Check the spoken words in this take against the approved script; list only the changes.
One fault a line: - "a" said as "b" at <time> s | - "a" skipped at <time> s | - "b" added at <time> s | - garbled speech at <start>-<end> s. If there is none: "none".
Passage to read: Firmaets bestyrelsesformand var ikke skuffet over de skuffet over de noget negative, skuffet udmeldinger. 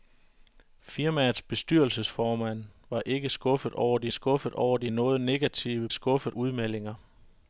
none